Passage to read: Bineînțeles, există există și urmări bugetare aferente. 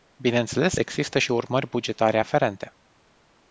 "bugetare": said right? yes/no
yes